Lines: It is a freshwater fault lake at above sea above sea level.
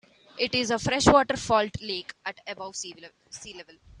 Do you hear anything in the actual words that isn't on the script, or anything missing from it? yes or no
yes